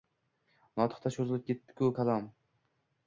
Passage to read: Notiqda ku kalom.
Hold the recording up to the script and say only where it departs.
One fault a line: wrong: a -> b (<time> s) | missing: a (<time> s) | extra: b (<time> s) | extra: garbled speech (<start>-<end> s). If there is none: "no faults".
extra: cho‘zilib ketdi (1.2 s)